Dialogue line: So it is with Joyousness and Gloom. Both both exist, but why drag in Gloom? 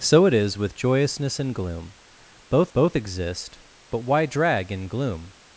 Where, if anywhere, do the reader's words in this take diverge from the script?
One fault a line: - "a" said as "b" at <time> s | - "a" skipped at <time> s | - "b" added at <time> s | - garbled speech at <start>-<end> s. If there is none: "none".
none